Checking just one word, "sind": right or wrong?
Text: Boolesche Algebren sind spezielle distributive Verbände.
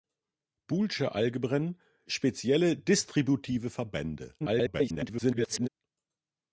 wrong